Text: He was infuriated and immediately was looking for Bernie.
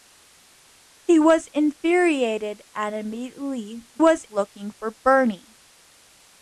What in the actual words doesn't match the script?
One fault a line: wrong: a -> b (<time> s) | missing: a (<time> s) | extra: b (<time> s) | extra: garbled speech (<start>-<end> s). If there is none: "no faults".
no faults